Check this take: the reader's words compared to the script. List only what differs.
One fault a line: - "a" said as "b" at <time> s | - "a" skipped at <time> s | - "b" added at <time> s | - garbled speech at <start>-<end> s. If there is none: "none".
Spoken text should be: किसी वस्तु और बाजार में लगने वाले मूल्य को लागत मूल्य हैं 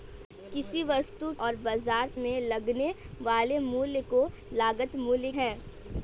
none